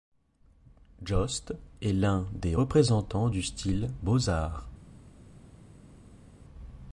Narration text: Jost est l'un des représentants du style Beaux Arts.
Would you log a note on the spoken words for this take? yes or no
no